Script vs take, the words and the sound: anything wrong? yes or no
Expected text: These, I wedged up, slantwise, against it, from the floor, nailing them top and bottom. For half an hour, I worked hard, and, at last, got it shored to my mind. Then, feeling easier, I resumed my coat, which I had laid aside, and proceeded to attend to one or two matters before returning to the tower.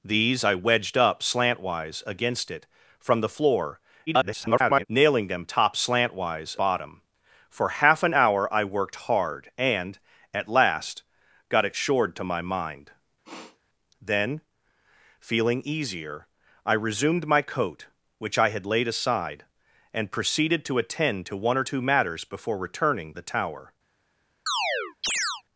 yes